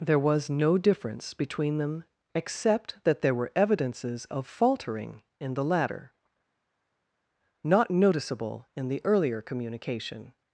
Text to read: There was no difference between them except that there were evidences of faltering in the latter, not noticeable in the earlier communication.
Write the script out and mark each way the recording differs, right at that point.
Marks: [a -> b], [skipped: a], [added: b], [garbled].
There was no difference between them except that there were evidences of faltering in the latter, not noticeable in the earlier communication.